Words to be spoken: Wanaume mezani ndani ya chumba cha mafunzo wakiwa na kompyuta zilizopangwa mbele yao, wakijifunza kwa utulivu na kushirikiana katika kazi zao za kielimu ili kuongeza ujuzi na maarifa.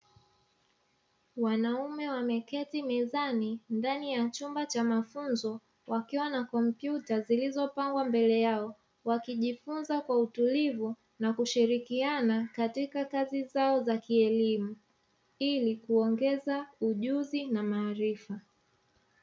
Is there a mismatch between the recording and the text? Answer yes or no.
yes